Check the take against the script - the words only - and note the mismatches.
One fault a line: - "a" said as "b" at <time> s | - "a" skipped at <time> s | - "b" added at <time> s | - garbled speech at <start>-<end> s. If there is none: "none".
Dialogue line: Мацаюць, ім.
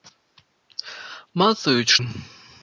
none